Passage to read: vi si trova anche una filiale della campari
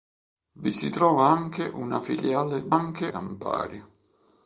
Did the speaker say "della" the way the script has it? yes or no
no